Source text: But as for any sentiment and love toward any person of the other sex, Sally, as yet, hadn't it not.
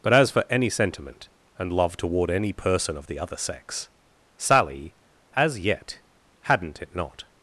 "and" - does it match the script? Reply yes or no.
yes